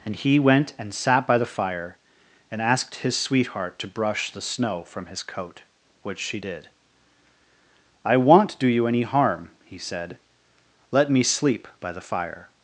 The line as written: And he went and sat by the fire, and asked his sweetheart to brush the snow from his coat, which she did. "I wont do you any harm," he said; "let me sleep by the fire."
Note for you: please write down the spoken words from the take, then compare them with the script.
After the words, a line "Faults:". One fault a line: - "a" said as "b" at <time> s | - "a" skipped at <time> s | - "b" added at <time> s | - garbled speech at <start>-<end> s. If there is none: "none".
And he went and sat by the fire, and asked his sweetheart to brush the snow from his coat, which she did. "I wont do you any harm," he said; "let me sleep by the fire."
Faults:
none